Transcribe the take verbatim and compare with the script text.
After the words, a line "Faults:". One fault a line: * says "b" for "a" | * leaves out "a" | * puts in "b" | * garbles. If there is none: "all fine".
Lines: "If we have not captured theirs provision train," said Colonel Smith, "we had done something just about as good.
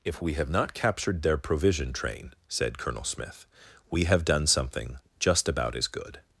"If we have not captured their provision train," said Colonel Smith, "we have done something just about as good.
Faults:
* says "their" for "theirs"
* says "have" for "had"